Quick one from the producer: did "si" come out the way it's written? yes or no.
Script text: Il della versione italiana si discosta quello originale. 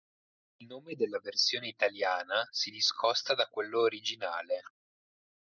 yes